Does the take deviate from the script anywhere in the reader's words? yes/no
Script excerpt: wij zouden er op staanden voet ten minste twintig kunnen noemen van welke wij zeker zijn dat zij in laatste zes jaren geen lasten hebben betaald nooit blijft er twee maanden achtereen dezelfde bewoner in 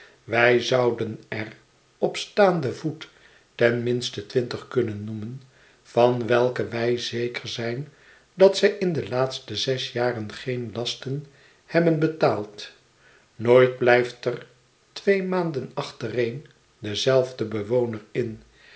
yes